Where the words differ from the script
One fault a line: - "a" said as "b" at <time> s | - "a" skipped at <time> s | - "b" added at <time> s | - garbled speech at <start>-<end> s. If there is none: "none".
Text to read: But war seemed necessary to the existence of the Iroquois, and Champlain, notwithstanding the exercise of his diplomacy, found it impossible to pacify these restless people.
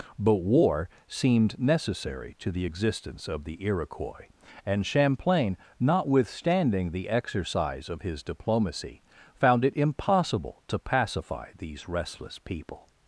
none